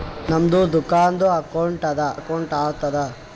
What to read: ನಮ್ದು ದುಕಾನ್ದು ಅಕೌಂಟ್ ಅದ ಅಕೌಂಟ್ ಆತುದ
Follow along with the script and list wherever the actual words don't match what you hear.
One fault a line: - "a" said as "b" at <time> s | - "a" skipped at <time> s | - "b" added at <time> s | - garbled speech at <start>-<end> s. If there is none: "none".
none